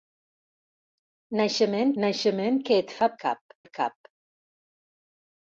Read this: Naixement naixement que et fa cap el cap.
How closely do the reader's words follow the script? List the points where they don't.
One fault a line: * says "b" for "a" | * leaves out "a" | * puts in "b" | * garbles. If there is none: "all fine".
all fine